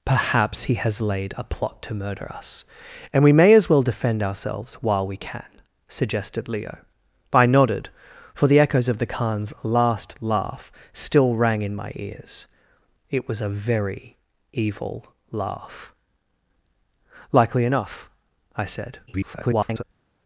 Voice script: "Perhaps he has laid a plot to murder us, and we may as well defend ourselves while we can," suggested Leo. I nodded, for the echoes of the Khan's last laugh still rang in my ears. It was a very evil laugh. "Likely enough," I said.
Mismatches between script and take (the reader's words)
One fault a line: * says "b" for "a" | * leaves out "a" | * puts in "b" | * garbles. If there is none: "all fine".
* garbles